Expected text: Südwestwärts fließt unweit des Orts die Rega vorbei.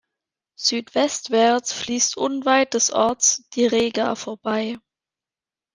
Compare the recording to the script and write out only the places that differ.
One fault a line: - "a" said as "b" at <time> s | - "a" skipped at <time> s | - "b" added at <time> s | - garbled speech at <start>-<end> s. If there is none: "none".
none